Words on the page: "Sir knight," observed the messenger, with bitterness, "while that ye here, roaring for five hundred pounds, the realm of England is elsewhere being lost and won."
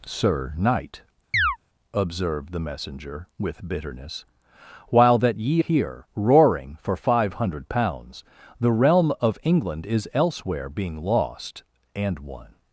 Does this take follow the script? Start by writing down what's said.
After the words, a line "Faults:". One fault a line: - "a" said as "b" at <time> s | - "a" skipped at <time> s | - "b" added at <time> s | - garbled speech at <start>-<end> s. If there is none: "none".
"Sir knight," observed the messenger, with bitterness, "while that ye here, roaring for five hundred pounds, the realm of England is elsewhere being lost and won."
Faults:
none